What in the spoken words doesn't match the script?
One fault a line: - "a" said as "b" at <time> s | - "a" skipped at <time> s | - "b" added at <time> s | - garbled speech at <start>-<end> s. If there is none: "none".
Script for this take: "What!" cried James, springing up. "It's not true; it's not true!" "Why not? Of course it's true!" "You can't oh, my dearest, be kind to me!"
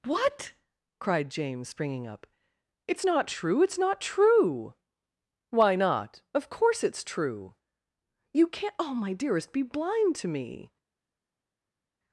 - "kind" said as "blind" at 9.6 s